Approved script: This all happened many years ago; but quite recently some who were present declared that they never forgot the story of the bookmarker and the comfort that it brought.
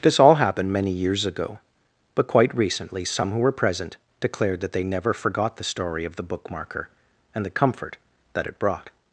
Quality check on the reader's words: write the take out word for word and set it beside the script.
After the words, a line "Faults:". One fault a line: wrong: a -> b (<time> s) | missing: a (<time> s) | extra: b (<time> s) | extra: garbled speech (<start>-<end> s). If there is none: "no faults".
This all happened many years ago; but quite recently some who were present declared that they never forgot the story of the bookmarker and the comfort that it brought.
Faults:
no faults